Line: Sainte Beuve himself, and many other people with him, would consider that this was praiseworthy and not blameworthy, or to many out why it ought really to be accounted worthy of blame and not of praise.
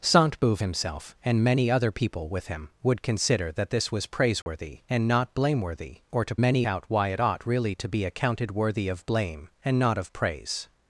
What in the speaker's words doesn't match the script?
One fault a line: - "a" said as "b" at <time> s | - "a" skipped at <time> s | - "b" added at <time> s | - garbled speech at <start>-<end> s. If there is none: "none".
none